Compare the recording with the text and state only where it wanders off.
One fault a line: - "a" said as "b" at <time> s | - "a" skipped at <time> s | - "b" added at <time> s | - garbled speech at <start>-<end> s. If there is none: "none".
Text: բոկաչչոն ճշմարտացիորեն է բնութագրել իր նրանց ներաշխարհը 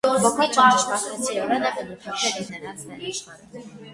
none